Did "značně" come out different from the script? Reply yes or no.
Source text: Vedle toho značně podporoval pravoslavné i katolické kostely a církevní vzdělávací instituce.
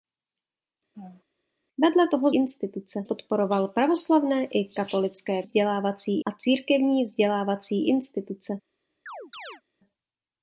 yes